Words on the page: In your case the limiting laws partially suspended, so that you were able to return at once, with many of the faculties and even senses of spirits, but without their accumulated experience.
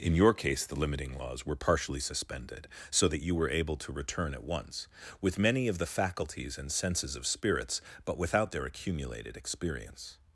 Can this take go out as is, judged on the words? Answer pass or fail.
fail